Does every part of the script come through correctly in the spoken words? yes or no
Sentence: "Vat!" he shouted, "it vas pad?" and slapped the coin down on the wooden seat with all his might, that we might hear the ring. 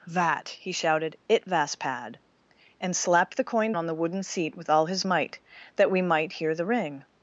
no